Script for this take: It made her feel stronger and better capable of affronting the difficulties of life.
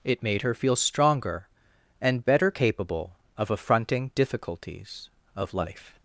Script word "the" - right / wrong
wrong